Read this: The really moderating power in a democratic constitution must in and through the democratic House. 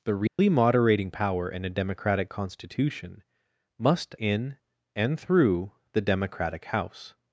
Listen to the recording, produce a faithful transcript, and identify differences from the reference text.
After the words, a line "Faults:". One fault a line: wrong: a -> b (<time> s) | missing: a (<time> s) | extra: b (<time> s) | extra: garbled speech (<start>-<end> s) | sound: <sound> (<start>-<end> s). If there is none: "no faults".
The really moderating power in a democratic constitution must in and through the democratic House.
Faults:
sound: dropout (0.3-0.4 s)